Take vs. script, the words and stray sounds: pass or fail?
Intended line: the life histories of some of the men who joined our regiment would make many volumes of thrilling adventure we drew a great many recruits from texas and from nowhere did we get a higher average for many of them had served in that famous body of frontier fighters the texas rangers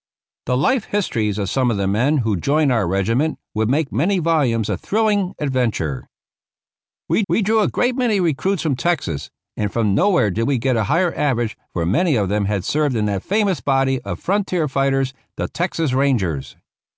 fail